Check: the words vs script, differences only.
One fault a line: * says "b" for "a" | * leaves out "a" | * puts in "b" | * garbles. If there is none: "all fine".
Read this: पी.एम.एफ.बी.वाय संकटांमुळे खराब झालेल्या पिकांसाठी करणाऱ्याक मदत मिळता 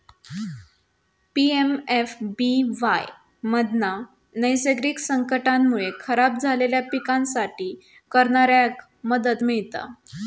* puts in "मधना नैसर्गिक"